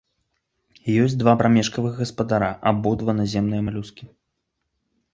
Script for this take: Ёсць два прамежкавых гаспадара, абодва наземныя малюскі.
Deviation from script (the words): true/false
false